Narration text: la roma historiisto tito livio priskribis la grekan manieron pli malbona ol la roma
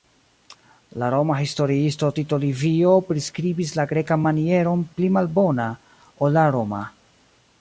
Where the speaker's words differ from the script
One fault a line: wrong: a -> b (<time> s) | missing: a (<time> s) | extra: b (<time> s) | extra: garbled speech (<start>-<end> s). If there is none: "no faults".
no faults